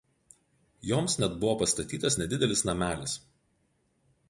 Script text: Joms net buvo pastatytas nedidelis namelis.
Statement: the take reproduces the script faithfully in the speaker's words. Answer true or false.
true